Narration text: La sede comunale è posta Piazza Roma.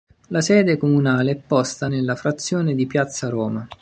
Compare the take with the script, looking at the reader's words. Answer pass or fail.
fail